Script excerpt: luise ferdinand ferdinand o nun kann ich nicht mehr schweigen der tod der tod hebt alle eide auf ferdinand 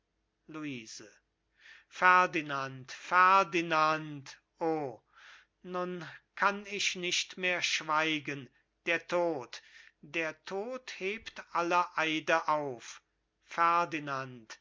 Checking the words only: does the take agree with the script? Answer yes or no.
yes